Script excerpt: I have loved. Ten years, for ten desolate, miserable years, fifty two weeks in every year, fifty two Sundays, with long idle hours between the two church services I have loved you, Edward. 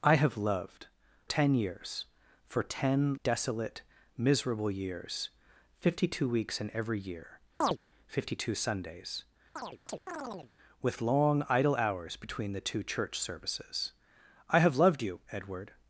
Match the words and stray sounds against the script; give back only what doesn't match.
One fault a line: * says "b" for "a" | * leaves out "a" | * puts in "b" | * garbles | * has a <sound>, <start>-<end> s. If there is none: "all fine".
* has a chirp, 7.6-7.8 s
* has a chirp, 9.6-10.5 s